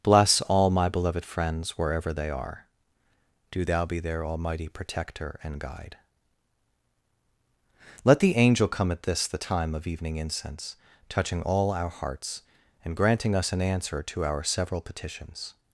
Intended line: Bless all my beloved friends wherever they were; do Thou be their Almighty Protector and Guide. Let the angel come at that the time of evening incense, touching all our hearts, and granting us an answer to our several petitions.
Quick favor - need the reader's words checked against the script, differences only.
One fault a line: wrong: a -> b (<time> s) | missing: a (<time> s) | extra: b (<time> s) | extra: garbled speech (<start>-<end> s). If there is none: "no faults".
wrong: were -> are (2.3 s)
wrong: that -> this (9.0 s)